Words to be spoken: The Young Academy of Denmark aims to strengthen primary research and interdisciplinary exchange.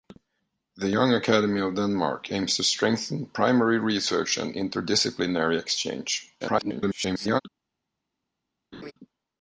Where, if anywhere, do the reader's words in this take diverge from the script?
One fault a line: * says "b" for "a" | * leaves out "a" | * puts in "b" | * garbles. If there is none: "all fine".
* garbles